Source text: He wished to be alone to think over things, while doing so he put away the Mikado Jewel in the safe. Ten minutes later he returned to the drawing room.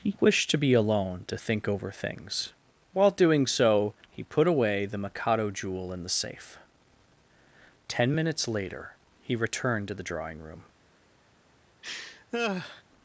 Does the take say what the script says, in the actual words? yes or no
yes